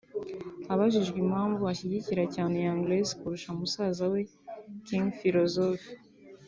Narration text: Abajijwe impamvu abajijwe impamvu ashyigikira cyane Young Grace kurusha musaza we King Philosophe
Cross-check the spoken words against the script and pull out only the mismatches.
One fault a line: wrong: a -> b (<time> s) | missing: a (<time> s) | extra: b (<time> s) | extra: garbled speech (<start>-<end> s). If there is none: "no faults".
missing: abajijwe impamvu (1.6 s)